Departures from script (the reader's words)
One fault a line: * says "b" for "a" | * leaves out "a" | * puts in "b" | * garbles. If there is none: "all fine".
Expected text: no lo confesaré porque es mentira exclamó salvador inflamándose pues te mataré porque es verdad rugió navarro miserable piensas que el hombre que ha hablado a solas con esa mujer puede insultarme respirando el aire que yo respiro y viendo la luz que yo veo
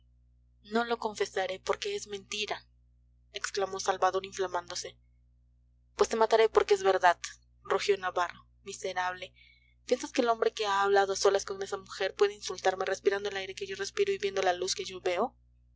all fine